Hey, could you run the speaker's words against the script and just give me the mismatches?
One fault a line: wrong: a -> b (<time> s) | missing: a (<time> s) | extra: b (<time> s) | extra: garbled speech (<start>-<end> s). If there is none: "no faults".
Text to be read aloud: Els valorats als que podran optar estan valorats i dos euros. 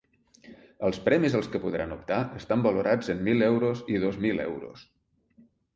wrong: valorats -> premis (1.1 s)
extra: en mil euros (3.2 s)
extra: mil (4.3 s)